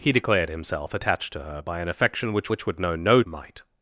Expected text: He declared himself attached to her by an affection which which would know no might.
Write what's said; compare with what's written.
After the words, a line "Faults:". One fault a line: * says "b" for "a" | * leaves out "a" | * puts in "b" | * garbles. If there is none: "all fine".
He declared himself attached to her by an affection which which would know no might.
Faults:
all fine